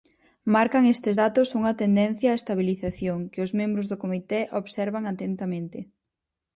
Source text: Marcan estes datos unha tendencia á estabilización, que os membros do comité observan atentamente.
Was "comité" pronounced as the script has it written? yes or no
yes